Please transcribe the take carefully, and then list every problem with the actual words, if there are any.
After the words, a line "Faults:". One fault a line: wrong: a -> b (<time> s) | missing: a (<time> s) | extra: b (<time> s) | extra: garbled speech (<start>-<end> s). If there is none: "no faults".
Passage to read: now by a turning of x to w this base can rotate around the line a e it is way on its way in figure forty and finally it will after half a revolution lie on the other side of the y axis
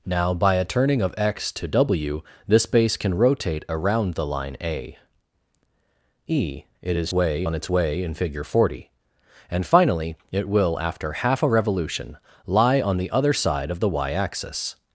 now by a turning of x to w this base can rotate around the line a e it is way on its way in figure forty and finally it will after half a revolution lie on the other side of the y axis
Faults:
no faults